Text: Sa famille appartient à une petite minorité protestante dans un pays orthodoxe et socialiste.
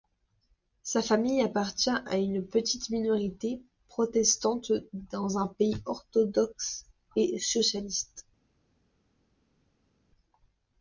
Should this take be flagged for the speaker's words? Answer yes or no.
no